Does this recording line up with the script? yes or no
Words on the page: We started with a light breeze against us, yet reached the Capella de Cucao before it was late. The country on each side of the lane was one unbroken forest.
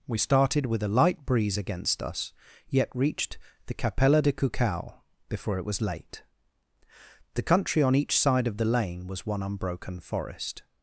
yes